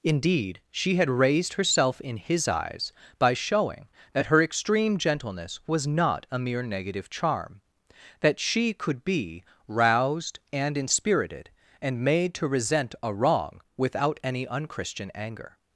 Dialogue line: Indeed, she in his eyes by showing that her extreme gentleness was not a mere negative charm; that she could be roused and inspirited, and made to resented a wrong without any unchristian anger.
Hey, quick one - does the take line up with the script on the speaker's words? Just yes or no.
no